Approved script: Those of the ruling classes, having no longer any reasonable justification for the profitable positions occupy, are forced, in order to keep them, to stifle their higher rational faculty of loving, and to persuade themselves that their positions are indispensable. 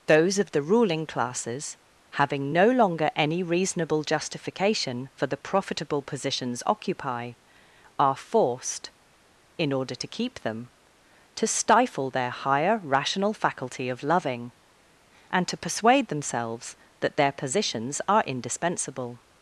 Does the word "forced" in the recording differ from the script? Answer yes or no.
no